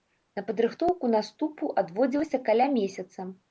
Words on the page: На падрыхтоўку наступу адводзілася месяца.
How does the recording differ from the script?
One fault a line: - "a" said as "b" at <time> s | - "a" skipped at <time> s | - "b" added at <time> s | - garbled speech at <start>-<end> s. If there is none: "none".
- "каля" added at 2.5 s